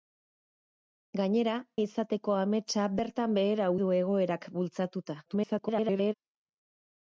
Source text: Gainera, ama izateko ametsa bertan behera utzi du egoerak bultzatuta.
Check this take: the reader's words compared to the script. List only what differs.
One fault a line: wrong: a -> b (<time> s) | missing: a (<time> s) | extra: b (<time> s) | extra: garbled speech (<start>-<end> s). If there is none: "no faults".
missing: ama (1.6 s)
missing: utzi (3.7 s)
extra: garbled speech (5.3-6.1 s)